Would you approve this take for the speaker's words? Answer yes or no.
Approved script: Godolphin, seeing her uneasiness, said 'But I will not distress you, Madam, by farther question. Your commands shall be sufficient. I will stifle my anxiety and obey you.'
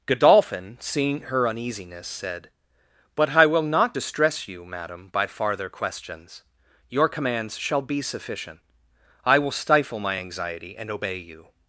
no